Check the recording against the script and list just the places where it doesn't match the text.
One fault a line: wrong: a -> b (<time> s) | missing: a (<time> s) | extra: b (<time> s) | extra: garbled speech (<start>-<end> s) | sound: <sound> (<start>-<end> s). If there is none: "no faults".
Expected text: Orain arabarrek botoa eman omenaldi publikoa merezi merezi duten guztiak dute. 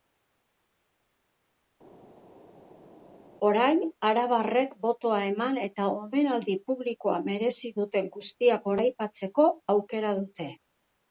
extra: eta (5.7 s)
missing: merezi (7.7 s)
extra: goraipatzeko aukera (8.7 s)